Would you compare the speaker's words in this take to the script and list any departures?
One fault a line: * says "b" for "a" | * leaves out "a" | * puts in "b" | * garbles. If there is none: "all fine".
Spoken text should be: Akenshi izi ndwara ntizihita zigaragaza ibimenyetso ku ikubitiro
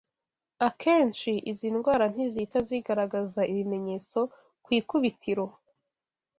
all fine